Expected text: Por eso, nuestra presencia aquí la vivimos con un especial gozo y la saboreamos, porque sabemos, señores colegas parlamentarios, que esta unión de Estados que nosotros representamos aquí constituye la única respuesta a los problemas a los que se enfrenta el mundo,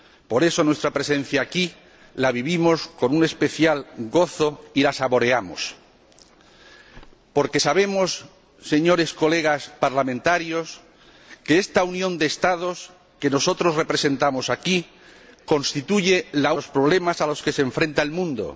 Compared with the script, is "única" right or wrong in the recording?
wrong